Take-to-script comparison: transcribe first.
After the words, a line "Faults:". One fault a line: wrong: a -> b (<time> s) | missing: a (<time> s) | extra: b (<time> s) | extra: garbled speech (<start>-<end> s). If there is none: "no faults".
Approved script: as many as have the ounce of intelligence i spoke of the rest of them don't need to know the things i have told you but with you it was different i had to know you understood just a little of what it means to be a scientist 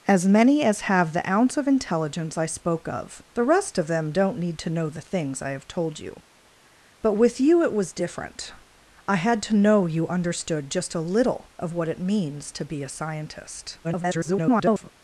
as many as have the ounce of intelligence i spoke of the rest of them don't need to know the things i have told you but with you it was different i had to know you understood just a little of what it means to be a scientist [garbled]
Faults:
extra: garbled speech (13.8-14.9 s)